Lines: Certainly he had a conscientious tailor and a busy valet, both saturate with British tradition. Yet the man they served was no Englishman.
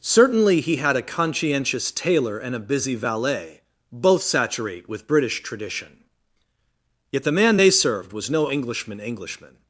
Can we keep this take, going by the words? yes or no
no